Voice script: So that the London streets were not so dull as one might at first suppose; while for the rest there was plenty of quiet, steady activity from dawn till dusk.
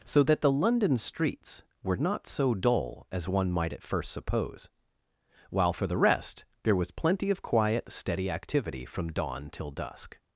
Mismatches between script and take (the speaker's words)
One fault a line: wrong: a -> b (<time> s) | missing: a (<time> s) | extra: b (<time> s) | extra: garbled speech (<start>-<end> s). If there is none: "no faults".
no faults